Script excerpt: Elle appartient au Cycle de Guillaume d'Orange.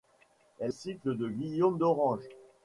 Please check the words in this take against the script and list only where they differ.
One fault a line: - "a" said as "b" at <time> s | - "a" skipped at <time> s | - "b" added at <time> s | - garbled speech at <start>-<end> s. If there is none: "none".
- "appartient au" skipped at 0.7 s